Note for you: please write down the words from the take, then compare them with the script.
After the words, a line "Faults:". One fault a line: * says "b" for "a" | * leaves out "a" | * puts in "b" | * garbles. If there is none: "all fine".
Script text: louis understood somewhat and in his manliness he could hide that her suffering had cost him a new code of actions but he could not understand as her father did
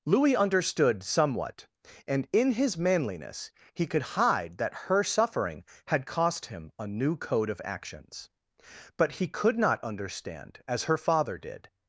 louis understood somewhat and in his manliness he could hide that her suffering had cost him a new code of actions but he could not understand as her father did
Faults:
all fine